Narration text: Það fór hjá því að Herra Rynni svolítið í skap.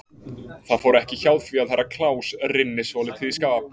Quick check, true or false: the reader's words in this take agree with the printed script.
false